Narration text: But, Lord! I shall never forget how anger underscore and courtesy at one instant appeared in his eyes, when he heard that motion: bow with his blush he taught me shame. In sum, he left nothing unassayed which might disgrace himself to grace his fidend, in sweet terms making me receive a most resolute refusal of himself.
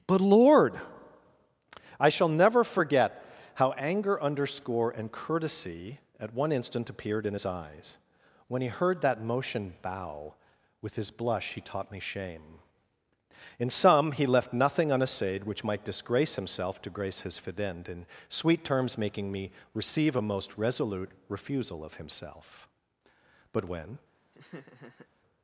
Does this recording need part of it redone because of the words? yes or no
yes